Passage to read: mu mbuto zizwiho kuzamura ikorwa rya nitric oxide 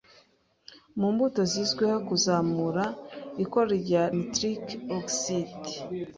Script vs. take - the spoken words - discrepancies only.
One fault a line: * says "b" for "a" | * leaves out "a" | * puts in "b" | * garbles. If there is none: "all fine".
* leaves out "rya"